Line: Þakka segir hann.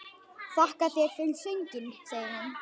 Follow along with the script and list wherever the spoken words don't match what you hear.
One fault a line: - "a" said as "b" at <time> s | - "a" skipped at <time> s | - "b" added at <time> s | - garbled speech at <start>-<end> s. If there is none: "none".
- "þér fyrir sönginn" added at 0.9 s